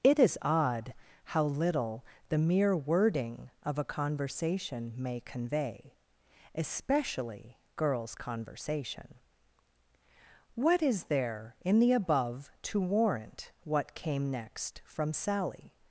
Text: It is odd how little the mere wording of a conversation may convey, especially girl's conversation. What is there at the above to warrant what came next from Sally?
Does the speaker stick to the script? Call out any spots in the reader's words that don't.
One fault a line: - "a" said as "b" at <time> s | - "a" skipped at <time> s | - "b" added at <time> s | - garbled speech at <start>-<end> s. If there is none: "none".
- "at" said as "in" at 11.6 s